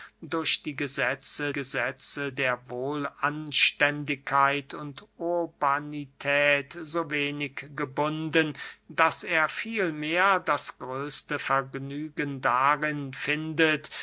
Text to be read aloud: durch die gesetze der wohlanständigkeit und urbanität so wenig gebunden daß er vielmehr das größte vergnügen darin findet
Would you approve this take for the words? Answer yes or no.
no